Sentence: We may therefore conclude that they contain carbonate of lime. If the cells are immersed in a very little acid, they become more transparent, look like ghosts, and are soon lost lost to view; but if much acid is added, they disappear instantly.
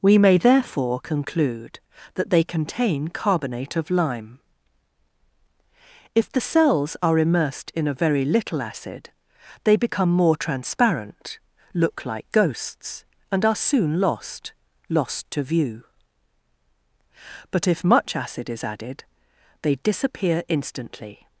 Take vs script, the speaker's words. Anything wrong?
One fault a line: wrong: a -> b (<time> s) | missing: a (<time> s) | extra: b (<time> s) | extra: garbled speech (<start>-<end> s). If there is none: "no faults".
no faults